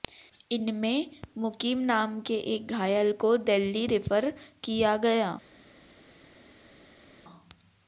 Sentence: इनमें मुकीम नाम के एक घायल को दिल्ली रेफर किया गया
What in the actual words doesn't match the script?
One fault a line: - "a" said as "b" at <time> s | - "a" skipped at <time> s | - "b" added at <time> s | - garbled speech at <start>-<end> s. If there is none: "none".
none